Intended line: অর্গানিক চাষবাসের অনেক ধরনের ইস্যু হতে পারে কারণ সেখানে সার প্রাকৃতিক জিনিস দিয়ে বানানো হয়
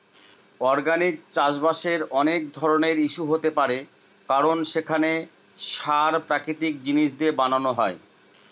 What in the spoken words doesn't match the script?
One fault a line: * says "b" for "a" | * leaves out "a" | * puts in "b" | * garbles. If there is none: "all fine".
all fine